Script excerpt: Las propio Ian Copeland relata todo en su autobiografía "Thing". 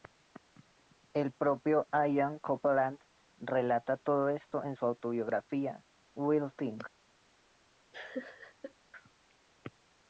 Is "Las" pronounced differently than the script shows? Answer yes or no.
yes